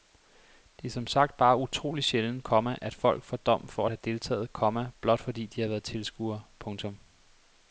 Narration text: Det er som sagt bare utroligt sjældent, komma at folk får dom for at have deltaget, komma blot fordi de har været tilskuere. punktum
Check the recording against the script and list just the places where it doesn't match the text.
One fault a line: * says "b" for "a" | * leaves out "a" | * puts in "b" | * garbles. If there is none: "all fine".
all fine